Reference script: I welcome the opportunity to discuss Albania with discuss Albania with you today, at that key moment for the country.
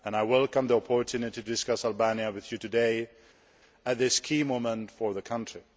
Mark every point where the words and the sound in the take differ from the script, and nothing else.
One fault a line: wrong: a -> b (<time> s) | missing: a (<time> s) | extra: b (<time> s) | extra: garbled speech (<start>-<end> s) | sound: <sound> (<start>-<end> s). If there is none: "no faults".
missing: discuss Albania with (2.5 s)
wrong: that -> this (4.0 s)